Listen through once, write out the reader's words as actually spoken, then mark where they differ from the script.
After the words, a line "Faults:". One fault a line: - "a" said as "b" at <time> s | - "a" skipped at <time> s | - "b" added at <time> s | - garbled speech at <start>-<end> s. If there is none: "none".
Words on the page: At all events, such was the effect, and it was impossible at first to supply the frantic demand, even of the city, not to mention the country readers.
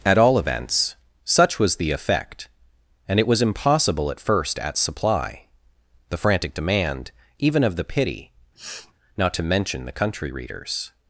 At all events, such was the effect, and it was impossible at first at supply the frantic demand, even of the pity, not to mention the country readers.
Faults:
- "to" said as "at" at 4.6 s
- "city" said as "pity" at 7.8 s